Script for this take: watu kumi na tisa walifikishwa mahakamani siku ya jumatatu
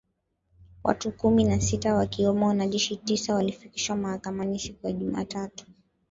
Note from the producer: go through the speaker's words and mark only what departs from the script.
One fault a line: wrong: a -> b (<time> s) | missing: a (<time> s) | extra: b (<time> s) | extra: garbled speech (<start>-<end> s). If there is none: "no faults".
extra: sita wakiwemo wanajeshi (1.6 s)